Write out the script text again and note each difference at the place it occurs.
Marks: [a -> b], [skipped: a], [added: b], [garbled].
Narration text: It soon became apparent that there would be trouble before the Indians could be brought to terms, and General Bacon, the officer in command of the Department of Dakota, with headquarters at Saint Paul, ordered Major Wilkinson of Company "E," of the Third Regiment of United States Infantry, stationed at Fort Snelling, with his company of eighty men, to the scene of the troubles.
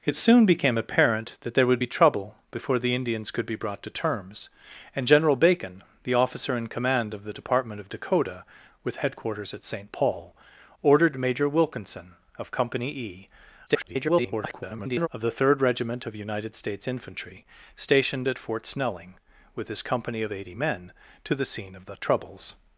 It soon became apparent that there would be trouble before the Indians could be brought to terms, and General Bacon, the officer in command of the Department of Dakota, with headquarters at Saint Paul, ordered Major Wilkinson of Company "E," [garbled] of the Third Regiment of United States Infantry, stationed at Fort Snelling, with his company of eighty men, to the scene of the troubles.